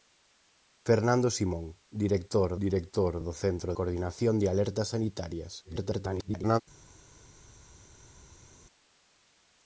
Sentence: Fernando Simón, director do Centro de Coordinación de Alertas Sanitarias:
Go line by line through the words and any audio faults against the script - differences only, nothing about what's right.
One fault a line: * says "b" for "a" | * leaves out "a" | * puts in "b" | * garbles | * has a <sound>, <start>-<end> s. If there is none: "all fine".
* puts in "director"
* leaves out "de"
* garbles